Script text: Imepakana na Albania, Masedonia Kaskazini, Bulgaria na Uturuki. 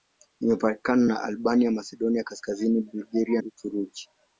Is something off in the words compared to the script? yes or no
yes